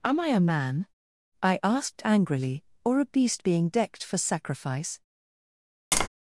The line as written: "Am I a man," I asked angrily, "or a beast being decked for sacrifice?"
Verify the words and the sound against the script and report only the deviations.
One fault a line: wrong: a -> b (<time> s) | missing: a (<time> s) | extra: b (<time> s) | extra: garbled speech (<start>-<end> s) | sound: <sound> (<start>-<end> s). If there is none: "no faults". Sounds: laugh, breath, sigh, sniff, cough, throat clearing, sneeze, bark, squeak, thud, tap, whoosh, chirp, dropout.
sound: tap (5.9-6.1 s)